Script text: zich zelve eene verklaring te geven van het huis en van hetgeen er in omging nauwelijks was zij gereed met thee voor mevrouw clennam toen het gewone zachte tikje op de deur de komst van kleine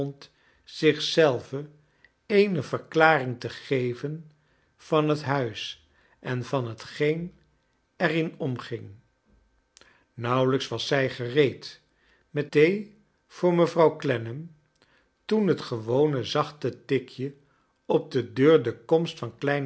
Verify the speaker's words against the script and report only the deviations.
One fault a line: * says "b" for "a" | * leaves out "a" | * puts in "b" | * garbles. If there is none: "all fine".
all fine